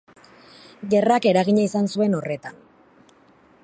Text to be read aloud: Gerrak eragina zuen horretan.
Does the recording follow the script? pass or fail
fail